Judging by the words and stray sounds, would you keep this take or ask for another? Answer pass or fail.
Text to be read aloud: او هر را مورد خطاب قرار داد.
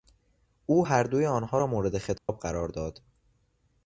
fail